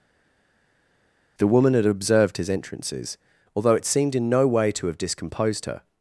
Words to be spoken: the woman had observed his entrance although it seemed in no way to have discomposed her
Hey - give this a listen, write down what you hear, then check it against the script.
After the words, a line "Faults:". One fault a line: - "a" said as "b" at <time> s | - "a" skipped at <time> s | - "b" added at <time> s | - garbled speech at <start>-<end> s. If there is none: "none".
the woman had observed his entrances although it seemed in no way to have discomposed her
Faults:
- "entrance" said as "entrances" at 2.5 s